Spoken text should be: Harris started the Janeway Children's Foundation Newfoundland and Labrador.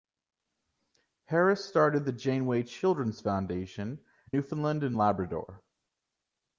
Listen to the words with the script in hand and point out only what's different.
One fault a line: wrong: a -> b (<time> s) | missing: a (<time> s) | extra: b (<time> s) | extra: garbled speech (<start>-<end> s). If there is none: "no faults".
no faults